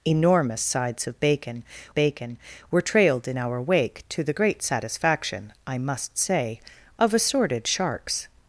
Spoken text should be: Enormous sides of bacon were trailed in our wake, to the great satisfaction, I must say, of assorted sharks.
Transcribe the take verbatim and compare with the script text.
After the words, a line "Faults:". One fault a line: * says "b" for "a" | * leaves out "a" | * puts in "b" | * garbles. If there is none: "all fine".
Enormous sides of bacon bacon were trailed in our wake, to the great satisfaction, I must say, of assorted sharks.
Faults:
* puts in "bacon"